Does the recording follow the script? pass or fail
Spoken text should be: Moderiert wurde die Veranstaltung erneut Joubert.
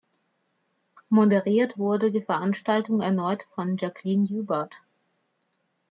fail